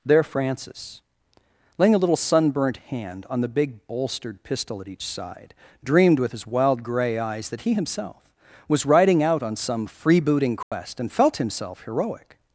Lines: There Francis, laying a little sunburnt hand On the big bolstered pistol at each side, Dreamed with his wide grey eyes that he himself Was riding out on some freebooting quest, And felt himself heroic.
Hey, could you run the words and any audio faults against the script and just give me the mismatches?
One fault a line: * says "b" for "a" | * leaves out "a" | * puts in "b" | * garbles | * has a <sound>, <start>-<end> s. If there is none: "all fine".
* says "wild" for "wide"
* has a dropout, 10.6-10.7 s